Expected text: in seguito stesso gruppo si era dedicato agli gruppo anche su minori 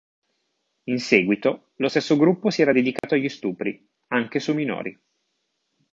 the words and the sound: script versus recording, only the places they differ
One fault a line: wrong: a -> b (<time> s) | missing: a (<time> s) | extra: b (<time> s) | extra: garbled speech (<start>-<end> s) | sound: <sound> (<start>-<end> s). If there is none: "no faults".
extra: lo (1.8 s)
sound: dropout (3.0-3.0 s)
wrong: gruppo -> stupri (3.3 s)